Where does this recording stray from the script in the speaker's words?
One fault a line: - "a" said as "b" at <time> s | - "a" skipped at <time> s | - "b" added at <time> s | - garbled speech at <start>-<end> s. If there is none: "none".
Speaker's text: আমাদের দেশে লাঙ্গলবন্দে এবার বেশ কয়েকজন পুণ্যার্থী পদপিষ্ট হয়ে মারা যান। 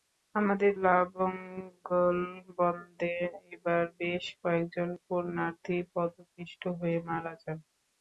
- "দেশে" skipped at 0.7 s